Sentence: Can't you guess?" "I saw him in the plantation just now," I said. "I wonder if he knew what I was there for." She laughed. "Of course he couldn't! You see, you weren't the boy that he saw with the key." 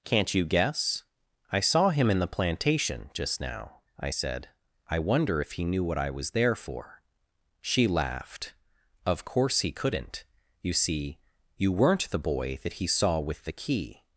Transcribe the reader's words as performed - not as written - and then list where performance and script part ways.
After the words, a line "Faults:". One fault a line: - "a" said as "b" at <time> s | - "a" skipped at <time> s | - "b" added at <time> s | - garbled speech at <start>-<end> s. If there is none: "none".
Can't you guess?" "I saw him in the plantation just now," I said. "I wonder if he knew what I was there for." She laughed. "Of course he couldn't! You see, you weren't the boy that he saw with the key."
Faults:
none